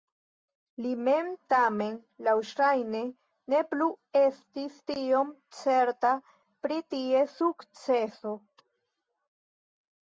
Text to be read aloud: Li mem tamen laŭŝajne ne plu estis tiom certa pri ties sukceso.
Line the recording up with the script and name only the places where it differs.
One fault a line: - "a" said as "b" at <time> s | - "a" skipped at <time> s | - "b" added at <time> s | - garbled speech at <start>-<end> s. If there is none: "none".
none